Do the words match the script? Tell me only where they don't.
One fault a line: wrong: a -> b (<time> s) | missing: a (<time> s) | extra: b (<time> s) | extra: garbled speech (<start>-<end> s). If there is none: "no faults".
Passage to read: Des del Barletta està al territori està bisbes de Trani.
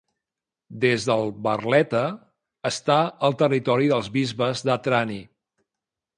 wrong: està -> dels (3.9 s)